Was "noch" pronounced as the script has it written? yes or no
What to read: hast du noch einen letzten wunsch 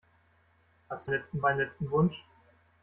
no